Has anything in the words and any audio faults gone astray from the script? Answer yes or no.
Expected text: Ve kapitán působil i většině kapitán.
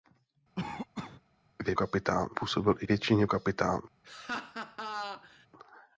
yes